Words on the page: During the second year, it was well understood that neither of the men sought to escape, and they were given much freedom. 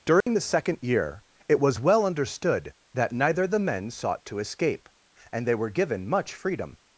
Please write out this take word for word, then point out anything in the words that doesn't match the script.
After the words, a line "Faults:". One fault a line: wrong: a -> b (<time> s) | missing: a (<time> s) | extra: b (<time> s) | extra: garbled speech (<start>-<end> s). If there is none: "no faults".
During the second year, it was well understood that neither the men sought to escape, and they were given much freedom.
Faults:
missing: of (3.5 s)